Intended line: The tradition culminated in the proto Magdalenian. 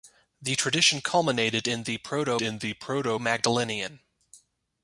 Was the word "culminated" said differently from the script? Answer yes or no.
no